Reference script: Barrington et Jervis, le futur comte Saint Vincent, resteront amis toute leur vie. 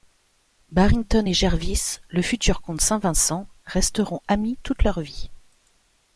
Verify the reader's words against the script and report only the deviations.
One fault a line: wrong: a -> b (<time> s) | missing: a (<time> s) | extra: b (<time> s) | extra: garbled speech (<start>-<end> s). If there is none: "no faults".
no faults